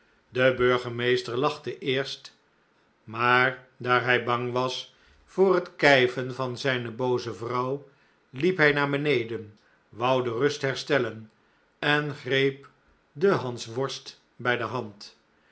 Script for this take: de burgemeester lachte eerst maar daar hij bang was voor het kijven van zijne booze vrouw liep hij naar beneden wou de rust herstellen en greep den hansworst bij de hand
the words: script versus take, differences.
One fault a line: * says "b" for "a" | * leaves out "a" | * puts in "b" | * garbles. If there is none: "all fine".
all fine